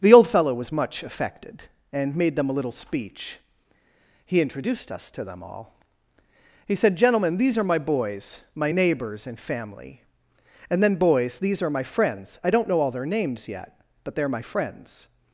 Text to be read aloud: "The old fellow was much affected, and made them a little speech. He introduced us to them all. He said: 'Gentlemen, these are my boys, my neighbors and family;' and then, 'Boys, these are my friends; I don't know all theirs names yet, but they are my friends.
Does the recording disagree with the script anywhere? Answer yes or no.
yes